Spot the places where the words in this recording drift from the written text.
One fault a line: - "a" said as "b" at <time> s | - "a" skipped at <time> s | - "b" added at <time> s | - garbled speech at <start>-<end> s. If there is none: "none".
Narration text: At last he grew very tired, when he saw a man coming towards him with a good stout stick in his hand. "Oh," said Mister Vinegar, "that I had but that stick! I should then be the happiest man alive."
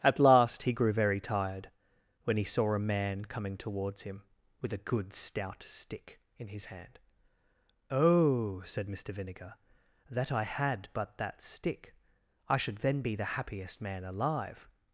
none